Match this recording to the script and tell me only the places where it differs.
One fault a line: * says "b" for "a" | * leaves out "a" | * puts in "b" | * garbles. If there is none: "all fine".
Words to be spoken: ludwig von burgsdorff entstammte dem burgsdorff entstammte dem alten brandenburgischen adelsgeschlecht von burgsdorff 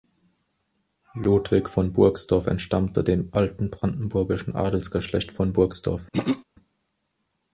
* leaves out "burgsdorff entstammte dem"